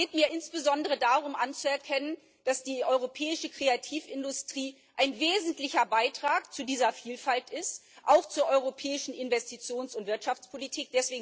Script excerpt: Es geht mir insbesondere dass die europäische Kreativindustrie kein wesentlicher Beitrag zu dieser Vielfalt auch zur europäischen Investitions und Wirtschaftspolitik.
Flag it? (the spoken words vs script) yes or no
yes